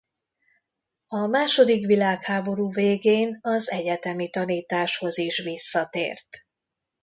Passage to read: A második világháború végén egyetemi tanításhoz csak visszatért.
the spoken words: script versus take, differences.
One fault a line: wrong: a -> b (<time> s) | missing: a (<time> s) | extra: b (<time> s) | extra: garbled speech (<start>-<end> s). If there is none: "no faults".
extra: az (3.4 s)
wrong: csak -> is (5.2 s)